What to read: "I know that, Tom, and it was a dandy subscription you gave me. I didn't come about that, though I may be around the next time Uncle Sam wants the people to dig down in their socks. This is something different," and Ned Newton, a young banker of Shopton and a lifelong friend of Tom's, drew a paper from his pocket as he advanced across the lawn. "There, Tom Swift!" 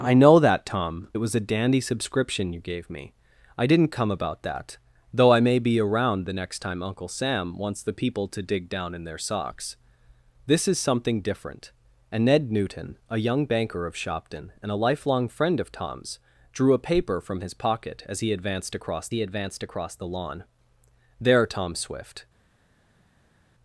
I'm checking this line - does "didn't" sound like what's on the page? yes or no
yes